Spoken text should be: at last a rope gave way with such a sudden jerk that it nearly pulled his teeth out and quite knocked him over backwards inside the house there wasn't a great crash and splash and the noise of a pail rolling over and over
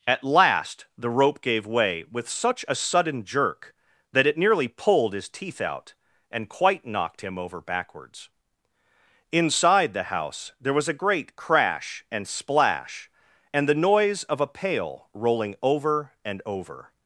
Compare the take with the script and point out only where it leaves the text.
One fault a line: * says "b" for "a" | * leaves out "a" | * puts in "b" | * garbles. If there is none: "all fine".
* says "the" for "a"
* says "was" for "wasn't"